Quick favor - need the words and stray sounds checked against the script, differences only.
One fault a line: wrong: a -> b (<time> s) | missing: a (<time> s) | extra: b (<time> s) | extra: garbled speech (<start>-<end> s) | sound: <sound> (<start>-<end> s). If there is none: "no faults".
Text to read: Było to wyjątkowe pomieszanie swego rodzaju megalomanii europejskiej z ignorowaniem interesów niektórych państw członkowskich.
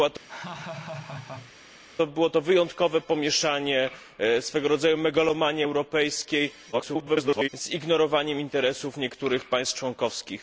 sound: laugh (0.3-1.5 s)
extra: garbled speech (6.7-7.5 s)